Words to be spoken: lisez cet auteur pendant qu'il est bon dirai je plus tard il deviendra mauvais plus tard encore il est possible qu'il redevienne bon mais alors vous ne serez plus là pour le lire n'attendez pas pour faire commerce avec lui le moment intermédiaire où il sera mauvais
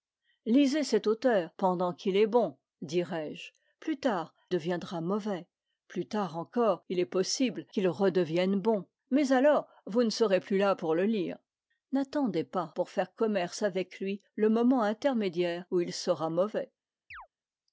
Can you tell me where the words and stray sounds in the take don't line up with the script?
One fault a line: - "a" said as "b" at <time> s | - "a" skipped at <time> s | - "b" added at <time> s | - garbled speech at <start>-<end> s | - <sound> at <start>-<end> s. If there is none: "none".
- "il" skipped at 4.3 s
- chirp at 17.1-17.3 s